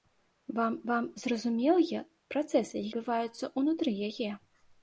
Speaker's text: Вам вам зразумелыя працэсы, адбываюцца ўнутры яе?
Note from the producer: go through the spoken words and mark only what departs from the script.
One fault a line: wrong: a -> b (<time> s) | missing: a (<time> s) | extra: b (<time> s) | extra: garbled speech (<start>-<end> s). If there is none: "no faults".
no faults